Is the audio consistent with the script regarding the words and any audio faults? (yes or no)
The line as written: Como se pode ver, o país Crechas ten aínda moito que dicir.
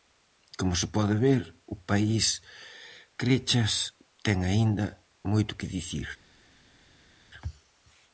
yes